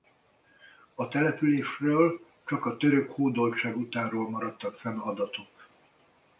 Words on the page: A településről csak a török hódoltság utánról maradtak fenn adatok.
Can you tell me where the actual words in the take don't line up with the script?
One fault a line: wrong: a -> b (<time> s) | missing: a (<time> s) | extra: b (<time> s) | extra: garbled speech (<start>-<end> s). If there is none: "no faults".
no faults